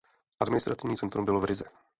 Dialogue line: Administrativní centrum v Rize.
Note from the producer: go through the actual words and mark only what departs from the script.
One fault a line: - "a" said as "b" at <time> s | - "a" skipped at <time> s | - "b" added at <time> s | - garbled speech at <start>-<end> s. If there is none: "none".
- "bylo" added at 1.3 s